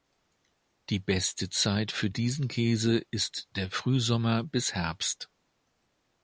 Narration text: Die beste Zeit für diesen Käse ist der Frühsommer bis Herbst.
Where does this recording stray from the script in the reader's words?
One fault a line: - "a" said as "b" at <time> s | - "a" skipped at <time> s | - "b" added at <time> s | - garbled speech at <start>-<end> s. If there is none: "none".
none